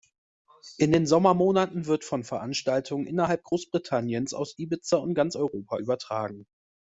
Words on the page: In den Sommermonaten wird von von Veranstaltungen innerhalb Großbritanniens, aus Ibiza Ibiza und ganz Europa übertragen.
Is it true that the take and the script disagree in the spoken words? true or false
true